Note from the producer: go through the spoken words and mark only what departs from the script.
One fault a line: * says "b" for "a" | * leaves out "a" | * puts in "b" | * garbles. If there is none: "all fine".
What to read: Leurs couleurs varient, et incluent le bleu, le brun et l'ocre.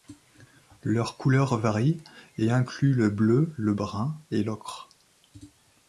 all fine